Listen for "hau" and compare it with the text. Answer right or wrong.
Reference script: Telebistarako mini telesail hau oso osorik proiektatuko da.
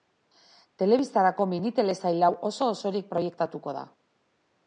right